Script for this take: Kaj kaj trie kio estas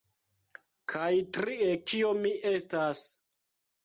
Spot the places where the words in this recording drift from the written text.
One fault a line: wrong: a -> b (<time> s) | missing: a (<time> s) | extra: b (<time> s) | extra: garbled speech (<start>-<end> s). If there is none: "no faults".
missing: kaj (1.1 s)
extra: mi (2.2 s)